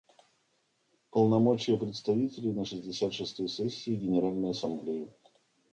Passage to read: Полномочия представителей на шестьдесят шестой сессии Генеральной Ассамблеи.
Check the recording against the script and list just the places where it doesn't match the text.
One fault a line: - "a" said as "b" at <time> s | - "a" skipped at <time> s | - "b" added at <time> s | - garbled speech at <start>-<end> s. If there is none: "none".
none